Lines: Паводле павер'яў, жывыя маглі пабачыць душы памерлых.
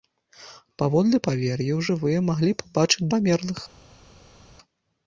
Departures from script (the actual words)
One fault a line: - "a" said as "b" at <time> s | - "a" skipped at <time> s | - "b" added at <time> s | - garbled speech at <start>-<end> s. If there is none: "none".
- "душы" skipped at 3.1 s